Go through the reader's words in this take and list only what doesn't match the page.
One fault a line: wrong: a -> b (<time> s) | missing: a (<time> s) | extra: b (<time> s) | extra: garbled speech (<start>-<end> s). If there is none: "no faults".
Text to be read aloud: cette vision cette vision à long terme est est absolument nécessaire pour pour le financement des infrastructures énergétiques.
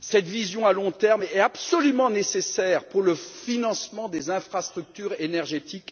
missing: cette vision (0.7 s)
missing: est (1.4 s)
missing: pour (3.0 s)